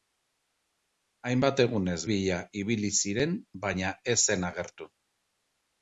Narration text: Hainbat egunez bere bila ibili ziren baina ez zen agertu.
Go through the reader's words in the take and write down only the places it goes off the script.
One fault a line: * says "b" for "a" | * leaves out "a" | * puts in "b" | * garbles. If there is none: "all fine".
* leaves out "bere"